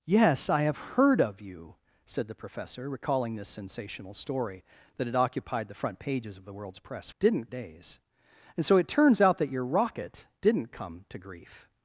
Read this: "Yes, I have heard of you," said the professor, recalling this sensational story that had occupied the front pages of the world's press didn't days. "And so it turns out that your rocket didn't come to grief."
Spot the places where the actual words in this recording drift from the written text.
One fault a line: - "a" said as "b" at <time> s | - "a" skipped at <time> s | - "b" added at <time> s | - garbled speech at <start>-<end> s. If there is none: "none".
none